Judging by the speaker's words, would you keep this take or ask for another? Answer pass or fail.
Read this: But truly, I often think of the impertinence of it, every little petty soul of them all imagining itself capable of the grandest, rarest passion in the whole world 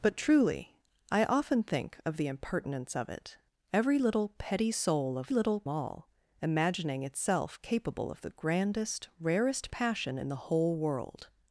fail